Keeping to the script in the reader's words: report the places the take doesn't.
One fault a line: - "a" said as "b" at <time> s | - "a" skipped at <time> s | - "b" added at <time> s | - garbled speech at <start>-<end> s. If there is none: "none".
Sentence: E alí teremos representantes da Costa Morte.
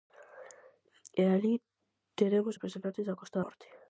none